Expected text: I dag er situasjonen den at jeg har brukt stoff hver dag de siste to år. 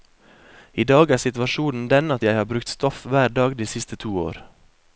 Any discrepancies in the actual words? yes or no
no